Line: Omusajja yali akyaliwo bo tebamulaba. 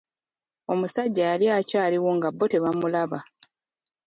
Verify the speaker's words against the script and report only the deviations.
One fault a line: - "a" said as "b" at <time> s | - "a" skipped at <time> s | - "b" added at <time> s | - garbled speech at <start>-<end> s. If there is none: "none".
- "nga" added at 2.2 s